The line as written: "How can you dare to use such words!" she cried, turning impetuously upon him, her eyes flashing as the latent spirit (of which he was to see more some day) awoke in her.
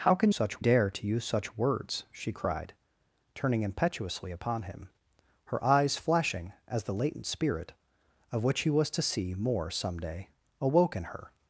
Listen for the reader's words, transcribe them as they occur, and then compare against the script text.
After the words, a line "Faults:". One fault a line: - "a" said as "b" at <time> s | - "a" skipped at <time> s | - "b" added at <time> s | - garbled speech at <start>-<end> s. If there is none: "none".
"How can such dare to use such words!" she cried, turning impetuously upon him, her eyes flashing as the latent spirit (of which he was to see more some day) awoke in her.
Faults:
- "you" said as "such" at 0.3 s